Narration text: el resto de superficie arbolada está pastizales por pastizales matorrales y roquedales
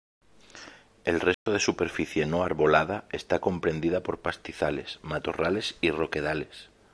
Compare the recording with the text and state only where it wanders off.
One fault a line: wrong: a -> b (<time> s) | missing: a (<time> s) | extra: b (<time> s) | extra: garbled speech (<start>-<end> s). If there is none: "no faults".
extra: no (2.2 s)
wrong: pastizales -> comprendida (3.4 s)